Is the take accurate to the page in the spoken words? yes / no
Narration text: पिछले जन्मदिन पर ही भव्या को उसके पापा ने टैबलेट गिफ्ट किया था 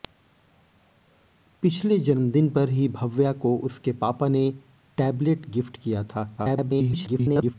no